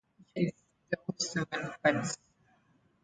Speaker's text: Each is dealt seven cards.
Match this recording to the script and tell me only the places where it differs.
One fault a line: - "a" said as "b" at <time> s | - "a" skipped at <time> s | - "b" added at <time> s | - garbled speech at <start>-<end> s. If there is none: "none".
none